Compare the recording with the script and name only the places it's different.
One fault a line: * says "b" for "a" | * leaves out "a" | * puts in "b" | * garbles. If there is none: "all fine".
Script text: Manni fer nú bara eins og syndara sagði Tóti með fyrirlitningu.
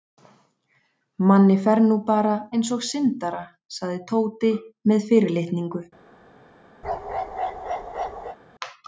all fine